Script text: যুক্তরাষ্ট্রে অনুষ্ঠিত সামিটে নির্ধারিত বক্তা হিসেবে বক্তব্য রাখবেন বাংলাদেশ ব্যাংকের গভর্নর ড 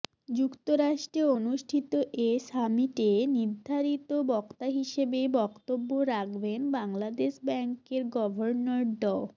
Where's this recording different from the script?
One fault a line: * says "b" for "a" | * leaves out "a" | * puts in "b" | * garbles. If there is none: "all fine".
* puts in "এ"